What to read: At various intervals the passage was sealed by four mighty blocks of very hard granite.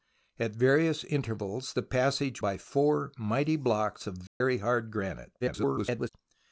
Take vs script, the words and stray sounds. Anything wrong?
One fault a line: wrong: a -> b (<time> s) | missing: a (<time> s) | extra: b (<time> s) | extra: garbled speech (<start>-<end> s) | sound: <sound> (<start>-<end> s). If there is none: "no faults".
missing: was sealed (2.4 s)
sound: dropout (4.3-4.4 s)
extra: garbled speech (5.4-6.1 s)